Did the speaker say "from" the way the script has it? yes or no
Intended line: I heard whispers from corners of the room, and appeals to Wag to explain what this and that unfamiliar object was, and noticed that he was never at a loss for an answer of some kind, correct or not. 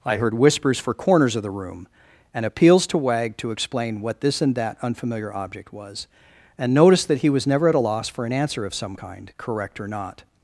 no